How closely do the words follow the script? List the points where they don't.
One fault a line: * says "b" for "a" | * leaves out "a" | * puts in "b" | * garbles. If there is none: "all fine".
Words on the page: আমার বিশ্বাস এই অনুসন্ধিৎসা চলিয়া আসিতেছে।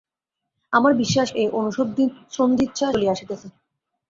all fine